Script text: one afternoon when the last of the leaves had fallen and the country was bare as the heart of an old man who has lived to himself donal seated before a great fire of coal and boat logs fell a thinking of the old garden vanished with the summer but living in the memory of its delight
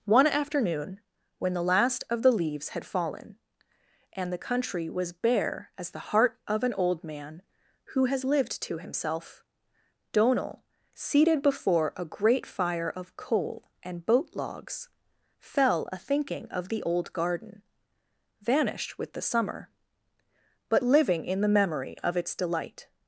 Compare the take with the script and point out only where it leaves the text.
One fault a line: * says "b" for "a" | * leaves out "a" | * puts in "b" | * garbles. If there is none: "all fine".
all fine